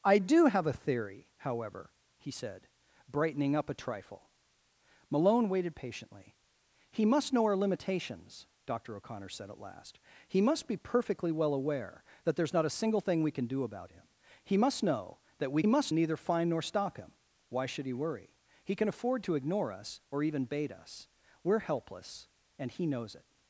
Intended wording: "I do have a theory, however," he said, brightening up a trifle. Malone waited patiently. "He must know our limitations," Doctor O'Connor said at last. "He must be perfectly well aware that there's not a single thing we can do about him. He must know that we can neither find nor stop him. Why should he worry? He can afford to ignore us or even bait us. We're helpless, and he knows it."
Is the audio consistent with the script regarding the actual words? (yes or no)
no